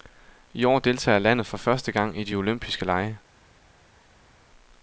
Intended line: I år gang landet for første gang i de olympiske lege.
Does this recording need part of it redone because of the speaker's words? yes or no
yes